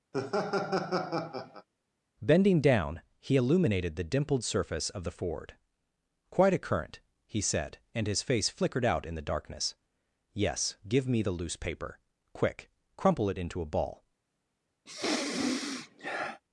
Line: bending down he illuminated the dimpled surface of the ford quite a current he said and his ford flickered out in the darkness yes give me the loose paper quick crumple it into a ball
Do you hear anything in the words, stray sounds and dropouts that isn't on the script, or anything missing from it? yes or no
yes